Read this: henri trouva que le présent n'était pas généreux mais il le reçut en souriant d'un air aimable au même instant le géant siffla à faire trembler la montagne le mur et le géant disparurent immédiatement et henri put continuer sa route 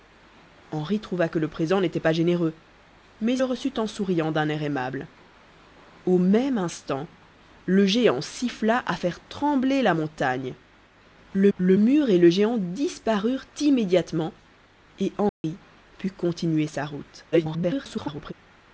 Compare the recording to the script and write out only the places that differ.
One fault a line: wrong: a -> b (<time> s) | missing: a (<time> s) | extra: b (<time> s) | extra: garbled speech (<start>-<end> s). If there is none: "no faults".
missing: il (3.4 s)
extra: le (11.6 s)
extra: garbled speech (17.3-18.3 s)